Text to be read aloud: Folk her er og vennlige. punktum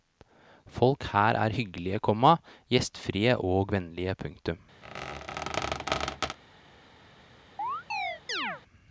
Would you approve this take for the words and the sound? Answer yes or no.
no